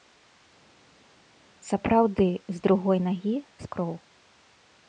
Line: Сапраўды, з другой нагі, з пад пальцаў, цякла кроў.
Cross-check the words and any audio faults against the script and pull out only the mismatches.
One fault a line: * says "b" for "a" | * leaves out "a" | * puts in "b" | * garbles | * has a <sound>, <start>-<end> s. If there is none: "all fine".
* leaves out "пад пальцаў цякла"